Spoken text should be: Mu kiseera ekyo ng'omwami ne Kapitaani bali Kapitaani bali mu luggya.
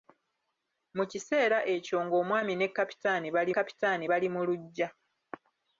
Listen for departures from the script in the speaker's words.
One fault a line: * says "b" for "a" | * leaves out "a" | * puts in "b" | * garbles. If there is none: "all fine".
all fine